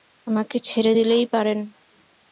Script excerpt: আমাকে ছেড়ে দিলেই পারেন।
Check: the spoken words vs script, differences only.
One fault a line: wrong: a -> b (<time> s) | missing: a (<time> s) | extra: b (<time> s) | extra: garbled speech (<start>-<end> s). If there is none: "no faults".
no faults